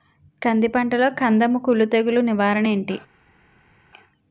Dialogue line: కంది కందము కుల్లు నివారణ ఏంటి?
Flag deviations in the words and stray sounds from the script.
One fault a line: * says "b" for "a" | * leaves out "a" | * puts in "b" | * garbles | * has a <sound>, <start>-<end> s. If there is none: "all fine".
* puts in "పంటలో"
* puts in "తెగులు"